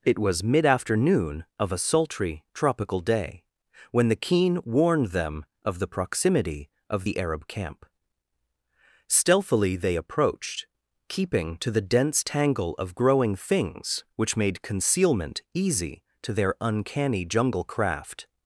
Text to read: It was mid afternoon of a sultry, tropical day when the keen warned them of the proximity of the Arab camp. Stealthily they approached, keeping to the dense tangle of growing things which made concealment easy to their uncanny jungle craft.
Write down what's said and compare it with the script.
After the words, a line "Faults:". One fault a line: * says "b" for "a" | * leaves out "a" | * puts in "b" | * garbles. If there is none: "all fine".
It was mid afternoon of a sultry, tropical day when the keen warned them of the proximity of the Arab camp. Stealthily they approached, keeping to the dense tangle of growing things which made concealment easy to their uncanny jungle craft.
Faults:
all fine